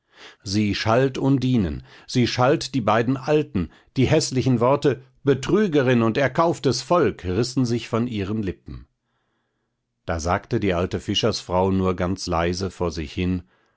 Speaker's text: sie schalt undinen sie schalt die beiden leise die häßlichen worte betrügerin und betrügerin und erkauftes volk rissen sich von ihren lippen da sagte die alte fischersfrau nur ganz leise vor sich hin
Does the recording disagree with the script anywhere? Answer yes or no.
yes